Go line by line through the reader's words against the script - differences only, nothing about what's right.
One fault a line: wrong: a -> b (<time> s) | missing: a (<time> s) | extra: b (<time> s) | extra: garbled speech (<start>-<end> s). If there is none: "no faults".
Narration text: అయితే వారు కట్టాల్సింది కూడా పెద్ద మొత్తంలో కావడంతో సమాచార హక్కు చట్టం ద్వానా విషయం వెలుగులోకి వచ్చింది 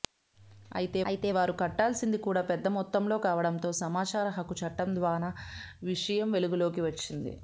extra: అయితే (1.1 s)